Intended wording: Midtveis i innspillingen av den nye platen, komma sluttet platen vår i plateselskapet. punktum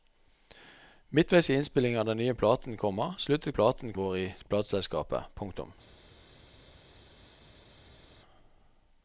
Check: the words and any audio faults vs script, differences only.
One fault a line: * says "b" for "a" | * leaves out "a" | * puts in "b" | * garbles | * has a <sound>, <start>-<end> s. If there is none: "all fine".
all fine